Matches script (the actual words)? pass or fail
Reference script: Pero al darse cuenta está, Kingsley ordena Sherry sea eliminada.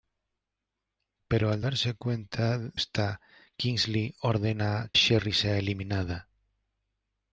pass